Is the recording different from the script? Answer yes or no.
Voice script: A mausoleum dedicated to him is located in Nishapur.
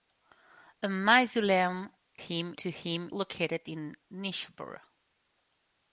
yes